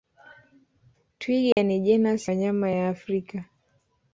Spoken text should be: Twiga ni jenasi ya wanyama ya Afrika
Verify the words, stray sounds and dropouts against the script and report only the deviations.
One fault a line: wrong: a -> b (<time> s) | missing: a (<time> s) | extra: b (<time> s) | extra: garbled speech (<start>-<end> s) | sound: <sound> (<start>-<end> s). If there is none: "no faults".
sound: dropout (1.5-1.6 s)
missing: ya (2.3 s)